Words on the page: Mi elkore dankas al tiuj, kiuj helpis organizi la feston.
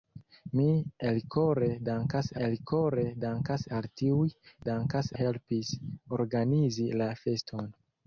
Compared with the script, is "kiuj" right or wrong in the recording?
wrong